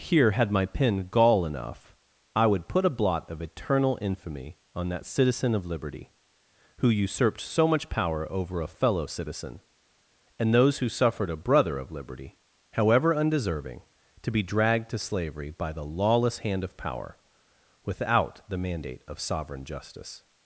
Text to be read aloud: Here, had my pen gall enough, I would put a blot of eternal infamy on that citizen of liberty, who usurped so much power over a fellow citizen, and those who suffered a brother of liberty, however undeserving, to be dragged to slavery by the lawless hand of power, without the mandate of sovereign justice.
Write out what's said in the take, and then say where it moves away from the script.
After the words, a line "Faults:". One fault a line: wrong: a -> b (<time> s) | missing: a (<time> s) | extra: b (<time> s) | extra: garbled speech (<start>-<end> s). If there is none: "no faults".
Here, had my pen gall enough, I would put a blot of eternal infamy on that citizen of liberty, who usurped so much power over a fellow citizen, and those who suffered a brother of liberty, however undeserving, to be dragged to slavery by the lawless hand of power, without the mandate of sovereign justice.
Faults:
no faults